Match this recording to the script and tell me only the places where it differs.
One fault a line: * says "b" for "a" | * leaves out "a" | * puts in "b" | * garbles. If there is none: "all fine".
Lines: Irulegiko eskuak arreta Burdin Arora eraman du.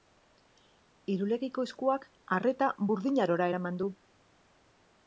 all fine